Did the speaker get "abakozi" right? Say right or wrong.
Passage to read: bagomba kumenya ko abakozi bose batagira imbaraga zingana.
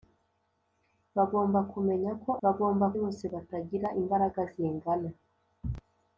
wrong